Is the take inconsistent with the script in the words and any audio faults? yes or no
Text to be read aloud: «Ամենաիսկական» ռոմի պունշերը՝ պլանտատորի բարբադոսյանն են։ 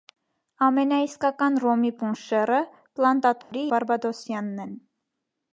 yes